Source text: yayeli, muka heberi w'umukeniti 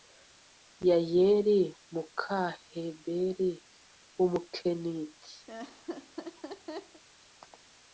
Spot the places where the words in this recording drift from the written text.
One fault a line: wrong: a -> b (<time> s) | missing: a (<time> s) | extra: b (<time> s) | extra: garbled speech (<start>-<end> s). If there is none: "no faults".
no faults